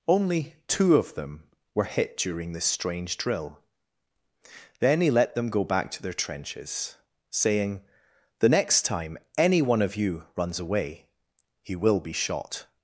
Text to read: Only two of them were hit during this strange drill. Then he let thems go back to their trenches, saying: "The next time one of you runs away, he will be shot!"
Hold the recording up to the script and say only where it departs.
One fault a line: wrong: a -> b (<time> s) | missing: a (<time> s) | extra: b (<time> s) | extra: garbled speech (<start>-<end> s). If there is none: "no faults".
wrong: thems -> them (5.3 s)
extra: any (9.4 s)